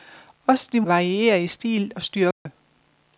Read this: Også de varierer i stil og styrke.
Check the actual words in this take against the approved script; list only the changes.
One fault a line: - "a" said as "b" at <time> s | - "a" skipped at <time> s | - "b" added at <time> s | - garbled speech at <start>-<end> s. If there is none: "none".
none